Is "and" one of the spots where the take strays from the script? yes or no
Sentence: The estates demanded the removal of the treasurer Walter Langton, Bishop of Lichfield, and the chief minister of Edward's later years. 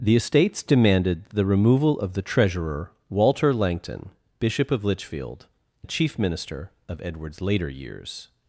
yes